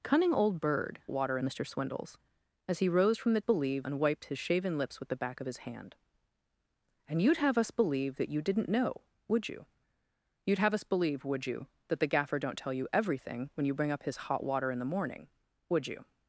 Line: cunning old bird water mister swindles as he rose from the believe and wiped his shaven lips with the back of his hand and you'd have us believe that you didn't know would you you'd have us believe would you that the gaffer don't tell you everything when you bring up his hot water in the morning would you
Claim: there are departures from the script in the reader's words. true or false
false